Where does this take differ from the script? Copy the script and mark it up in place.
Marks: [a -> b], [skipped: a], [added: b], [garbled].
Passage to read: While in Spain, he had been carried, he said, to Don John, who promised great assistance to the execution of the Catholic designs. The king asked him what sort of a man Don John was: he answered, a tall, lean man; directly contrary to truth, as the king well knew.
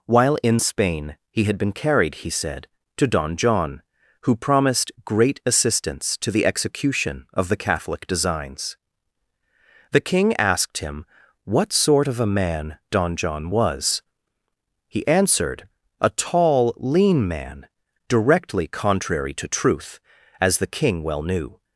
While in Spain, he had been carried, he said, to Don John, who promised great assistance to the execution of the Catholic designs. The king asked him what sort of a man Don John was: he answered, a tall, lean man; directly contrary to truth, as the king well knew.